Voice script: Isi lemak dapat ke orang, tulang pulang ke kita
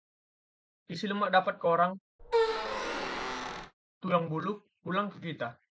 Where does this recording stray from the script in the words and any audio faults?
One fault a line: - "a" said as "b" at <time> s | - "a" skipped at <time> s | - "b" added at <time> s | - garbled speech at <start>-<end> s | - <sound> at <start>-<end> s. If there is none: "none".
- squeak at 2.2-3.7 s
- "bulu" added at 4.3 s